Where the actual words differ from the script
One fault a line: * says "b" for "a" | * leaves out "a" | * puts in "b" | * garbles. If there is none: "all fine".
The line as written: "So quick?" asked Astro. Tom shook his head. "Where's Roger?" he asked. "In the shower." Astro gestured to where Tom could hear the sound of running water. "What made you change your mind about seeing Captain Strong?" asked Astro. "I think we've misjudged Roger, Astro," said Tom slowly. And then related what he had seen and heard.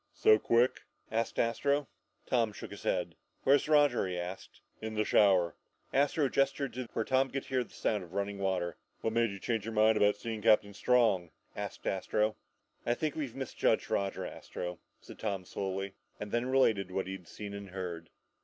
all fine